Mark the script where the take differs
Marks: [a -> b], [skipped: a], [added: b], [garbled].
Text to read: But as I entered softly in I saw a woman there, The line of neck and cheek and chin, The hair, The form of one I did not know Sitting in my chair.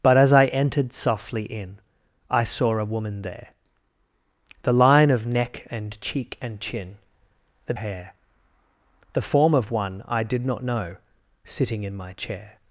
But as I entered softly in I saw a woman there, The line of neck and cheek and chin, The hair, The form of one I did not know Sitting in my chair.